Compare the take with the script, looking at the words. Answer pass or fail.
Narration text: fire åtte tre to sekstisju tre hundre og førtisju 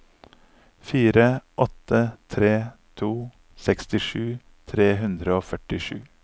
pass